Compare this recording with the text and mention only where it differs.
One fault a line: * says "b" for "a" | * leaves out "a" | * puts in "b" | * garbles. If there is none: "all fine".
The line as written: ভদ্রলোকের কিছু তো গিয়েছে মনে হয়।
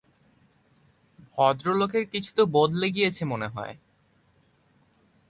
* puts in "বদলে"